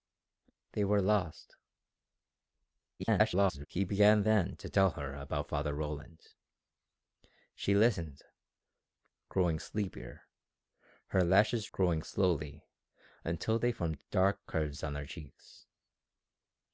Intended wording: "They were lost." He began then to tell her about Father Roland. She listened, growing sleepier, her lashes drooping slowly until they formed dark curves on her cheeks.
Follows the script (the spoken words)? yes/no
no